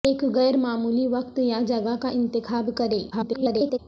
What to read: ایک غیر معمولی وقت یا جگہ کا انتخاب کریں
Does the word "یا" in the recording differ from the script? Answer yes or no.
no